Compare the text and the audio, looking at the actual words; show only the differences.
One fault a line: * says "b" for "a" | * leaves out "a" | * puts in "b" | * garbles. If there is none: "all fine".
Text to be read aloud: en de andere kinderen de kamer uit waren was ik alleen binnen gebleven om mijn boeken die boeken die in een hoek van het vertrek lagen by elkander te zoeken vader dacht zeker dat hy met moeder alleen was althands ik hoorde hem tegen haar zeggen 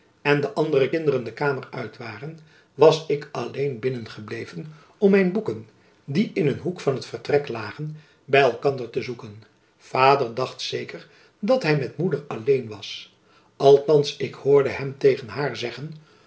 * leaves out "boeken die"